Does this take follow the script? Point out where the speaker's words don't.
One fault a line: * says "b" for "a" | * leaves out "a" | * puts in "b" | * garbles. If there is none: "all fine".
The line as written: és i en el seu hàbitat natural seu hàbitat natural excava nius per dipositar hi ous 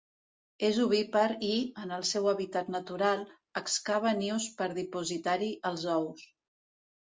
* puts in "ovípar"
* leaves out "seu hàbitat natural"
* puts in "els"